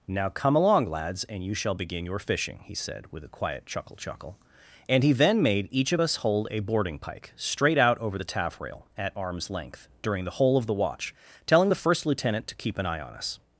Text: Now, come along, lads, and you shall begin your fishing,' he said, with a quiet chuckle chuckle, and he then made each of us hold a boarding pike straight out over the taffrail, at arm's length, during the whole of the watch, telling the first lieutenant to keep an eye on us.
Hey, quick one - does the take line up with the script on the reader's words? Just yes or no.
yes